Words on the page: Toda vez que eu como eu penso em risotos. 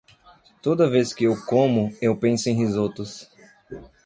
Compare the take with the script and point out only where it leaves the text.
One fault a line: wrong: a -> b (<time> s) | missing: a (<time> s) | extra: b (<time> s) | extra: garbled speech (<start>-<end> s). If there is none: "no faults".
no faults